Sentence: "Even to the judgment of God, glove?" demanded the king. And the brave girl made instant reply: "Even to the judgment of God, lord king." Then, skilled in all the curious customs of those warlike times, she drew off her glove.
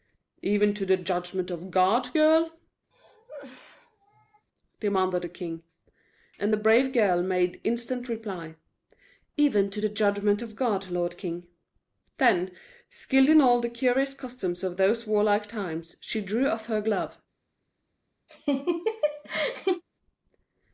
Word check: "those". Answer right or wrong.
right